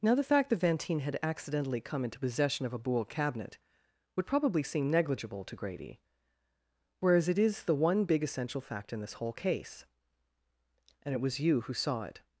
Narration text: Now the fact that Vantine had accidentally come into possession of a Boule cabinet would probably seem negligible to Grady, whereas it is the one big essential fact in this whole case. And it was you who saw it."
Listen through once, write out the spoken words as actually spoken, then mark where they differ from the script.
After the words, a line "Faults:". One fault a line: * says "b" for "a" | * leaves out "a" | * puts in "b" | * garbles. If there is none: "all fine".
Now the fact that Vantine had accidentally come into possession of a Boule cabinet would probably seem negligible to Grady, whereas it is the one big essential fact in this whole case. And it was you who saw it."
Faults:
all fine